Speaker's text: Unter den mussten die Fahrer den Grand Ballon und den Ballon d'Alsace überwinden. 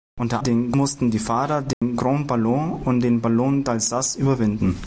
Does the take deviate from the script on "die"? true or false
false